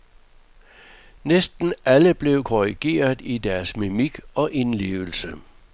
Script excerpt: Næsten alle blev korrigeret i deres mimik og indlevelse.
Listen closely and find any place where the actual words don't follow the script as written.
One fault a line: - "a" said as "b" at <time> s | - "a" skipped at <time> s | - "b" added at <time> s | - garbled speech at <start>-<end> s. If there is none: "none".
none